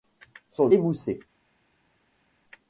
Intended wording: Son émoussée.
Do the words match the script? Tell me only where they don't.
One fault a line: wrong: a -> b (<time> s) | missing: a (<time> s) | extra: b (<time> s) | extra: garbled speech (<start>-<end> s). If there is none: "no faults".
no faults